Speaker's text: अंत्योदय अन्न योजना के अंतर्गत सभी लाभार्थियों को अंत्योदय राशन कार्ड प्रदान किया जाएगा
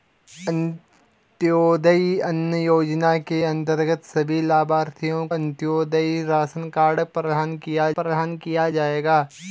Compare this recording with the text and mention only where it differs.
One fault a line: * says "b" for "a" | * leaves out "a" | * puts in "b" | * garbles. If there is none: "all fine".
* leaves out "को"
* puts in "प्रदान किया"